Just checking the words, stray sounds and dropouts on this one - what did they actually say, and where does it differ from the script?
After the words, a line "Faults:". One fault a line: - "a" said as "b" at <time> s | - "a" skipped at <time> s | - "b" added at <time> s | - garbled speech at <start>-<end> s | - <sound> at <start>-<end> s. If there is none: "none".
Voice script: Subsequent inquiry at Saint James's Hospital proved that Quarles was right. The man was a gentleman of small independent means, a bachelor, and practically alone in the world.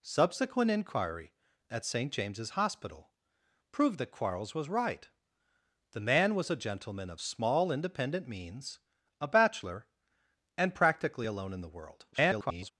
Subsequent inquiry at Saint James's Hospital proved that Quarles was right. The man was a gentleman of small independent means, a bachelor, and practically alone in the world. [garbled]
Faults:
- garbled speech at 12.1-12.7 s